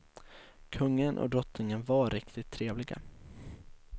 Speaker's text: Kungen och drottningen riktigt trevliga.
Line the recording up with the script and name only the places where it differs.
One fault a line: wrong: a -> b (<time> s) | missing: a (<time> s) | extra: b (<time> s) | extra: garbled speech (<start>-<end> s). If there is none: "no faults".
extra: var (1.8 s)